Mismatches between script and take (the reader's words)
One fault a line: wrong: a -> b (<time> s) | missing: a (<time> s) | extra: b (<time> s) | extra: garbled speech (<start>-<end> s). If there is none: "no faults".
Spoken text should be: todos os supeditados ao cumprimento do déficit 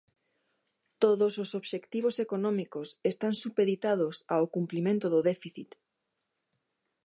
extra: obxectivos económicos están (1.6 s)